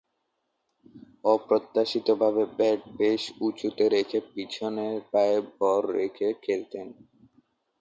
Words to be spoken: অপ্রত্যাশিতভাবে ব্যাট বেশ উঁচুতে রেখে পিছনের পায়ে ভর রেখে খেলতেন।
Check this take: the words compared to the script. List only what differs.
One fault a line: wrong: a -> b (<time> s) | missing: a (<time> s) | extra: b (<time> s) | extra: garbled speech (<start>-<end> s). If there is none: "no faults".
no faults